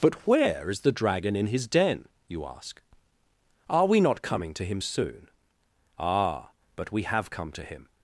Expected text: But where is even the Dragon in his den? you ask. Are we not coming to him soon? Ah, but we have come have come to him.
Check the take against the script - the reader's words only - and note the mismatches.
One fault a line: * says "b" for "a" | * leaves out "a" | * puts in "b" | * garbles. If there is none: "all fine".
* leaves out "even"
* leaves out "have come"